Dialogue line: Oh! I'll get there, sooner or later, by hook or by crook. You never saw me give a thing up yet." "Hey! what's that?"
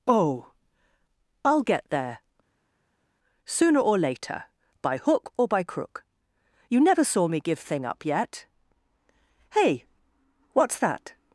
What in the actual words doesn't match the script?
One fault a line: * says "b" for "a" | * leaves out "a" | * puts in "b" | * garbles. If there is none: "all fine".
* leaves out "a"